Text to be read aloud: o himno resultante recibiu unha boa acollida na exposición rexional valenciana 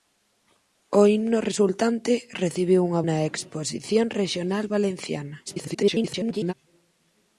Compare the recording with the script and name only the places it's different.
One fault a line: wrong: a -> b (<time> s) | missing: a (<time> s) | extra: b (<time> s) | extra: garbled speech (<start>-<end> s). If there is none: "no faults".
missing: boa acollida (3.0 s)
extra: garbled speech (5.5-6.5 s)